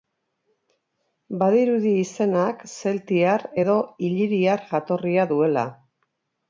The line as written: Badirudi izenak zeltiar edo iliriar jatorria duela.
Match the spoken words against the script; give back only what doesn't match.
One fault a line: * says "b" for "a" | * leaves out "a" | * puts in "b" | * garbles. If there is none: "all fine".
all fine